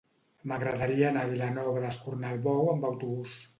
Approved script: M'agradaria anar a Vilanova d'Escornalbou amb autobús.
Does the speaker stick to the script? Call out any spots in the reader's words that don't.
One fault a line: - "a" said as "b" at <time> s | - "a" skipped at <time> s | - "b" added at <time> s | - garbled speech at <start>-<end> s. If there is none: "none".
none